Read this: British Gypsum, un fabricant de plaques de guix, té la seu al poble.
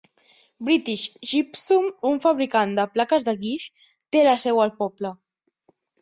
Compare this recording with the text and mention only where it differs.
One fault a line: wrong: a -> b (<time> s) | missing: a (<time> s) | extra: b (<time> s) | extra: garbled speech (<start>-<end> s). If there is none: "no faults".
no faults